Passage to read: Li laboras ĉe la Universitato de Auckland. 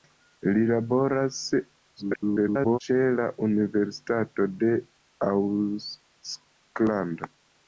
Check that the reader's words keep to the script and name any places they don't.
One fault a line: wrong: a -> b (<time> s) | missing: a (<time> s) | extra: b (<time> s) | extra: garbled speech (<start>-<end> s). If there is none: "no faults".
extra: garbled speech (2.0-2.8 s)